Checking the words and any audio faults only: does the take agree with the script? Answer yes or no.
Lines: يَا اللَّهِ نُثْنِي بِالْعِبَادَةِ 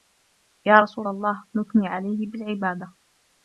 no